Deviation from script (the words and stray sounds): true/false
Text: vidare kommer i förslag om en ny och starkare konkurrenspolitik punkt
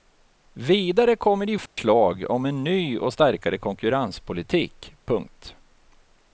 true